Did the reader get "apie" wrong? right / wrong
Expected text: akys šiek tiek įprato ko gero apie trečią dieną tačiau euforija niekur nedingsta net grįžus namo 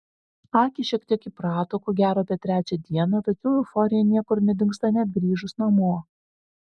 right